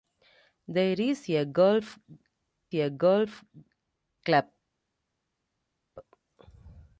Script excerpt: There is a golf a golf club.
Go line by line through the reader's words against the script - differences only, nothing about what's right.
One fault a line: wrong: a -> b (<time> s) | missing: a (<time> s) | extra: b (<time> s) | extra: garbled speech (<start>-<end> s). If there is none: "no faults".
no faults